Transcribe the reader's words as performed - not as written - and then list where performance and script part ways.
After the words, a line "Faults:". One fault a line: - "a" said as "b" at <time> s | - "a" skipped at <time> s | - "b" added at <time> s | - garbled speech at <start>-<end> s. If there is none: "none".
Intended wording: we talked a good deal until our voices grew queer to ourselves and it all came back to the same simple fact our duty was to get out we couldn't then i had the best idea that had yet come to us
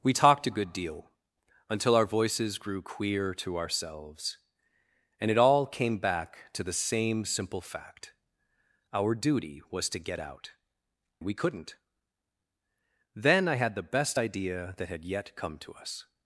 we talked a good deal until our voices grew queer to ourselves and it all came back to the same simple fact our duty was to get out we couldn't then i had the best idea that had yet come to us
Faults:
none